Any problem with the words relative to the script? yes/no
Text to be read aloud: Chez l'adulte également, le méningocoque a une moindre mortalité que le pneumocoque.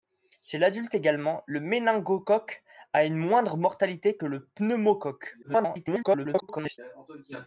yes